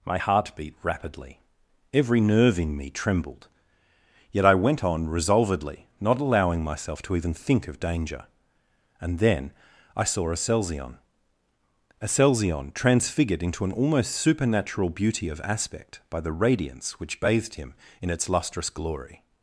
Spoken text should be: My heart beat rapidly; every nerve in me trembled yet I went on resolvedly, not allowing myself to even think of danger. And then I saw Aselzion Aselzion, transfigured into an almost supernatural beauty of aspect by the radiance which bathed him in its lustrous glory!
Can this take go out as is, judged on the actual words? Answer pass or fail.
pass